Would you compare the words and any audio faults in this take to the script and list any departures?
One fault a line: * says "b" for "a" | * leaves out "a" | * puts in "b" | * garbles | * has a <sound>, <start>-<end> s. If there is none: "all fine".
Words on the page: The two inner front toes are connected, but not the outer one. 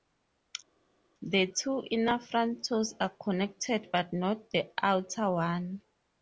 all fine